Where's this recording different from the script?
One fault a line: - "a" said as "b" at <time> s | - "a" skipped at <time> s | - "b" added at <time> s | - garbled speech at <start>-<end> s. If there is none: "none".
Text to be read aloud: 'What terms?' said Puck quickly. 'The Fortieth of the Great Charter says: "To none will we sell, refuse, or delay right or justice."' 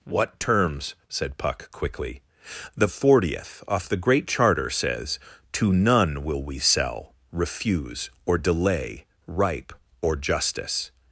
- "of" said as "off" at 3.7 s
- "right" said as "ripe" at 9.3 s